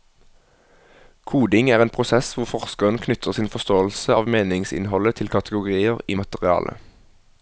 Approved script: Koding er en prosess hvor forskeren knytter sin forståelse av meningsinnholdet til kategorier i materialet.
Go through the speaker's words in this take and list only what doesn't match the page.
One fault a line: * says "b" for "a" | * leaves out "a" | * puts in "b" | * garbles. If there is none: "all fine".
all fine